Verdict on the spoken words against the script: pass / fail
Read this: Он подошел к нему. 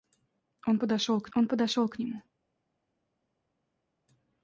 fail